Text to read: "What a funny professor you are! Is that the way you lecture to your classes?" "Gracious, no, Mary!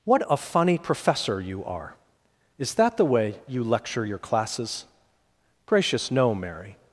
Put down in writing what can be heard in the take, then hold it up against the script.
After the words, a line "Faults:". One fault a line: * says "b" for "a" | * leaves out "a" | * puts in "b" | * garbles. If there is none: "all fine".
"What a funny professor you are! Is that the way you lecture your classes?" "Gracious, no, Mary!
Faults:
* leaves out "to"